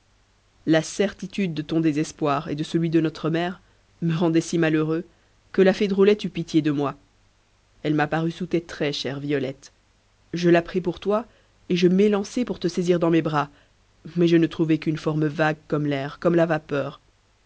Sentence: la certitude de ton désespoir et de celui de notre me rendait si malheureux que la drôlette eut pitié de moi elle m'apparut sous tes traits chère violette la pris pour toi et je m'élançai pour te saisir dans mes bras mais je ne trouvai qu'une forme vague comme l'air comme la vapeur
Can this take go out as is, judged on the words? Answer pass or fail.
fail